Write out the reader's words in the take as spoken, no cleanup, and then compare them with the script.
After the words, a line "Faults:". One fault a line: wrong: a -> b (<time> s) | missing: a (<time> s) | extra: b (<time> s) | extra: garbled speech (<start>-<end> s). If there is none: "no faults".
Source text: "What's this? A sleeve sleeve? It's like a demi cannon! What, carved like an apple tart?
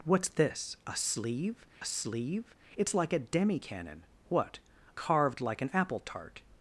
"What's this? A sleeve sleeve? It's like a demi cannon! What, carved like an apple tart?
Faults:
no faults